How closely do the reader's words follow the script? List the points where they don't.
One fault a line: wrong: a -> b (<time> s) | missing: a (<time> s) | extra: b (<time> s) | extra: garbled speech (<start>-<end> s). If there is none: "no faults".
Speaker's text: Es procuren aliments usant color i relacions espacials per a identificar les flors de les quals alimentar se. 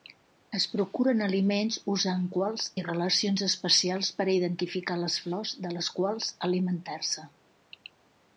wrong: color -> quals (2.4 s)